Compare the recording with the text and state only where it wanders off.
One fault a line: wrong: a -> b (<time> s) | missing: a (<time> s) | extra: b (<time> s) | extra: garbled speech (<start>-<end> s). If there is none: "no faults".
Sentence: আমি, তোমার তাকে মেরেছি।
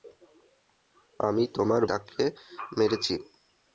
no faults